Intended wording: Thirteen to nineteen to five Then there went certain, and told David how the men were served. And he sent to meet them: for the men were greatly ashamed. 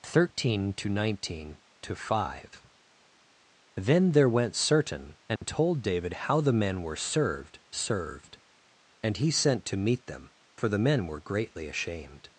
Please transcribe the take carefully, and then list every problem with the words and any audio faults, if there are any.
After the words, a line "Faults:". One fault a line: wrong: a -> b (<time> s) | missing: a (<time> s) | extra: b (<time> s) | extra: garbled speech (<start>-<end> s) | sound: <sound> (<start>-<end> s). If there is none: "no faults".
Thirteen to nineteen to five Then there went certain, and told David how the men were served served. And he sent to meet them: for the men were greatly ashamed.
Faults:
sound: dropout (5.4-5.4 s)
extra: served (7.7 s)